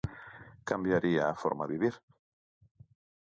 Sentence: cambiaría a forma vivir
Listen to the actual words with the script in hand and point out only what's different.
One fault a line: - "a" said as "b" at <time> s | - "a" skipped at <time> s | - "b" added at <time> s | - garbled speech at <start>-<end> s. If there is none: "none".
none